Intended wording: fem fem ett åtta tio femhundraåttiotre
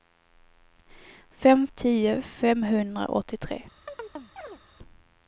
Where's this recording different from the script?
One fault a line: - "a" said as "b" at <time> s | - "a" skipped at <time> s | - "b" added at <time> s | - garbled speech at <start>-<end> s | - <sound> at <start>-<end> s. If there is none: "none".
- "fem ett åtta" skipped at 1.7 s
- chirp at 3.9-4.6 s